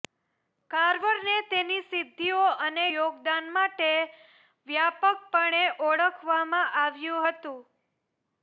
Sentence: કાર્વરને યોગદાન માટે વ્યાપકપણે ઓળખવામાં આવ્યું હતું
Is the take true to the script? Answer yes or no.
no